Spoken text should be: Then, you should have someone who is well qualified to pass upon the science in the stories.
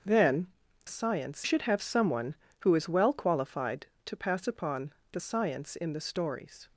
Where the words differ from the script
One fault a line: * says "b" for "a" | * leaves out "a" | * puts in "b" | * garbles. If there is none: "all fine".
* says "science" for "you"